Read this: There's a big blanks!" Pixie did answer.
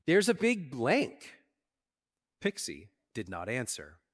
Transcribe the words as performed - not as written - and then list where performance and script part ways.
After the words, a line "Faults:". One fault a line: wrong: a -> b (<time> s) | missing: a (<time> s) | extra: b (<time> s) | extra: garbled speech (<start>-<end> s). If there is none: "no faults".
There's a big blank!" Pixie did not answer.
Faults:
wrong: blanks -> blank (0.7 s)
extra: not (3.3 s)